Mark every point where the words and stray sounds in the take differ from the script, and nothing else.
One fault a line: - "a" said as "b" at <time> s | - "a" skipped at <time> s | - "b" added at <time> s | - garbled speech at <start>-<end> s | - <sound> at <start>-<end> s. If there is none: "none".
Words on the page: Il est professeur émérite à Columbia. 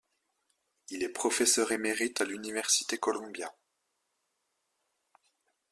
- "l'université" added at 2.2 s